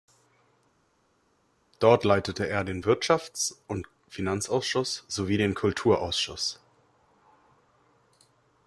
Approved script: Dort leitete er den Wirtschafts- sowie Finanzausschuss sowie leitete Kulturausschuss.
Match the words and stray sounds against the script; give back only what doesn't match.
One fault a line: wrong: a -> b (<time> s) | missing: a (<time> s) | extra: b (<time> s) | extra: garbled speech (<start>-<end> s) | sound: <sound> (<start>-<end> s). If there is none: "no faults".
wrong: sowie -> und (3.7 s)
wrong: leitete -> den (5.4 s)